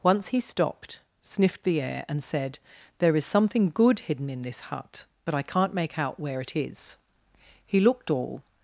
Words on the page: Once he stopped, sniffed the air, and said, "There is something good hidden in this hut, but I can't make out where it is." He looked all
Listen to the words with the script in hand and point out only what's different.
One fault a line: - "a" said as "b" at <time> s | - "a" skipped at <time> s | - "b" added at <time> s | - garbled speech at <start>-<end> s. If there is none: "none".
none